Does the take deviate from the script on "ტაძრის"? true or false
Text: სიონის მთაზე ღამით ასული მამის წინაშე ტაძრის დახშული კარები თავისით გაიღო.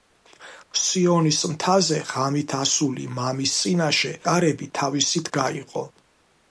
true